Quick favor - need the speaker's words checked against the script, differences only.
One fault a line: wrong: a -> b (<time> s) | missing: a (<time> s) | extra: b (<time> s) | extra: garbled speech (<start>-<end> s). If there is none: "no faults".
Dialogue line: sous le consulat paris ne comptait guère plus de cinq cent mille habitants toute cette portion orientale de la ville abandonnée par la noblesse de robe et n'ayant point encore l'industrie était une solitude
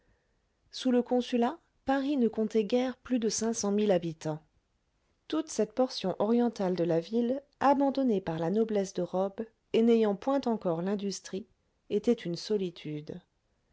no faults